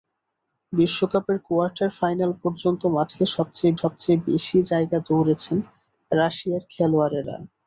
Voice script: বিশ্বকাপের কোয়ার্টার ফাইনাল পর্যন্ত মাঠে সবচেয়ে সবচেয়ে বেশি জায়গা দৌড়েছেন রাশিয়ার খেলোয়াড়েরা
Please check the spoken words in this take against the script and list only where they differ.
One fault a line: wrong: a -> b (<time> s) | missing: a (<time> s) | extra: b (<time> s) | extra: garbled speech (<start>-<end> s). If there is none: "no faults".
no faults